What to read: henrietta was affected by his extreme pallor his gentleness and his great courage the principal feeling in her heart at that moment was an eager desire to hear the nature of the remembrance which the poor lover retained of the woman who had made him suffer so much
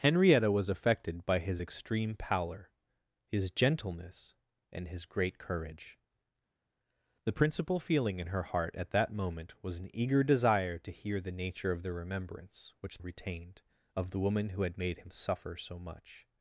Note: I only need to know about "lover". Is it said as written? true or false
false